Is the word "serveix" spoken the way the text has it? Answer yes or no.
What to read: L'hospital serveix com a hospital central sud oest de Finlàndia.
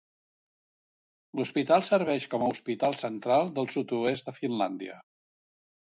yes